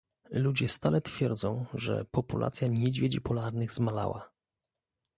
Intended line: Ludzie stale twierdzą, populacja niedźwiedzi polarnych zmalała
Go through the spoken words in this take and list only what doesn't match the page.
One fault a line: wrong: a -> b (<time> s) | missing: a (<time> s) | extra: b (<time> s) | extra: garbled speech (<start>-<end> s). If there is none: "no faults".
extra: że (1.7 s)